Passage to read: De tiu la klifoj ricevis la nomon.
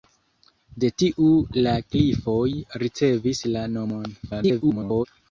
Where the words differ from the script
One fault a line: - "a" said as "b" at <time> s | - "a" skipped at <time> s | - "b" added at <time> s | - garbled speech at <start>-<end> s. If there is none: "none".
- garbled speech at 4.2-5.1 s